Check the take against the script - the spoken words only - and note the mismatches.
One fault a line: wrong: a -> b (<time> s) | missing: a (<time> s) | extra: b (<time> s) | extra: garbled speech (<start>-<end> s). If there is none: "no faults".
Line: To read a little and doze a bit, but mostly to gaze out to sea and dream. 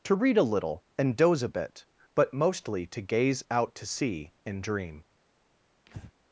no faults